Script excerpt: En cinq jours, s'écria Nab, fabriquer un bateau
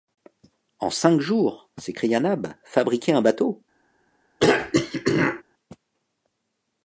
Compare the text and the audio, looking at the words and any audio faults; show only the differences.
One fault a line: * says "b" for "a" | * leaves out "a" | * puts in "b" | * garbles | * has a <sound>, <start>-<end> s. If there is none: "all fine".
* has a throat clearing, 4.4-5.4 s